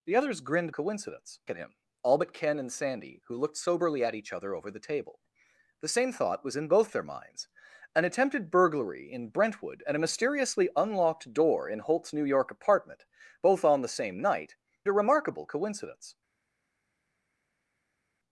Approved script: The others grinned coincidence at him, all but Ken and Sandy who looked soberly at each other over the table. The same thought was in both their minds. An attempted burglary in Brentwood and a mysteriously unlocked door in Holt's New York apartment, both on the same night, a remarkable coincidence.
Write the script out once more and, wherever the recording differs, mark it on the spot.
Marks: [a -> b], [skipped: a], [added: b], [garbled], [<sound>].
The others grinned coincidence at him, all but Ken and Sandy who looked soberly at each other over the table. The same thought was in both their minds. An attempted burglary in Brentwood and a mysteriously unlocked door in Holt's New York apartment, both on the same night, a remarkable coincidence.